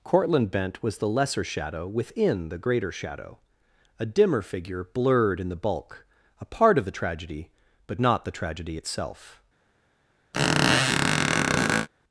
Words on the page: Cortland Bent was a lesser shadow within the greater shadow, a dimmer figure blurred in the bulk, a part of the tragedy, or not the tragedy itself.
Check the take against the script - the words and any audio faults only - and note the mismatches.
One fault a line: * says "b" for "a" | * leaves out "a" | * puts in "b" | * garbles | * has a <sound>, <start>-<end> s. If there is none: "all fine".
* says "the" for "a"
* says "but" for "or"
* has a squeak, 10.3-11.9 s